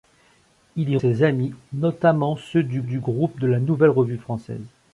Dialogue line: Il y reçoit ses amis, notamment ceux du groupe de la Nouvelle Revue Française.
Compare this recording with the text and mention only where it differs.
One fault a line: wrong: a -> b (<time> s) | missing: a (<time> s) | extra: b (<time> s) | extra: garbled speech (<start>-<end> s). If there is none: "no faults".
missing: reçoit (1.0 s)
extra: du (2.8 s)